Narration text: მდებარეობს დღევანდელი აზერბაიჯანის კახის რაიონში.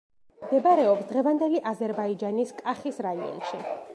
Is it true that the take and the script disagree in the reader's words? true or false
false